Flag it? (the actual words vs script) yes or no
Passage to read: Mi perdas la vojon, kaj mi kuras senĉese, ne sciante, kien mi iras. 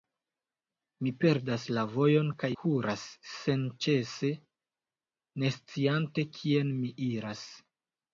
yes